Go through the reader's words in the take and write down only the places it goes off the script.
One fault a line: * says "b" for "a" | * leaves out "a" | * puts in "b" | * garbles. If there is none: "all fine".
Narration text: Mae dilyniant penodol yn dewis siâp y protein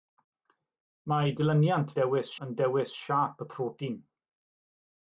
* says "dewis" for "penodol"